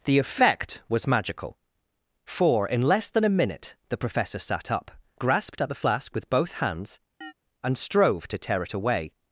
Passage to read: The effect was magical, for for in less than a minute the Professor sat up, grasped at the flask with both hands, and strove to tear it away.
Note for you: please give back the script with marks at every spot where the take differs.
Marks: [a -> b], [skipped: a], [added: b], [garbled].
The effect was magical, for [skipped: for] in less than a minute the Professor sat up, grasped at the flask with both hands, and strove to tear it away.